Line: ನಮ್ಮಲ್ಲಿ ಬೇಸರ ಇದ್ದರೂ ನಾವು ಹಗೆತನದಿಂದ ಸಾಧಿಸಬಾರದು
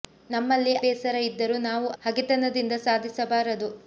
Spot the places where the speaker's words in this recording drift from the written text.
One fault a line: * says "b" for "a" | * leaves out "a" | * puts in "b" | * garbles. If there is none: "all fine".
all fine